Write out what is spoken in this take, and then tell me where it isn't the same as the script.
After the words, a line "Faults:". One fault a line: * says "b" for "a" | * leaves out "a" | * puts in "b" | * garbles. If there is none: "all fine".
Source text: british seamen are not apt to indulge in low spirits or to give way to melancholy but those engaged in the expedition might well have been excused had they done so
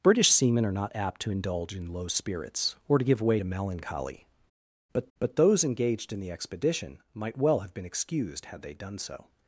british seamen are not apt to indulge in low spirits or to give way to melancholy but but those engaged in the expedition might well have been excused had they done so
Faults:
* puts in "but"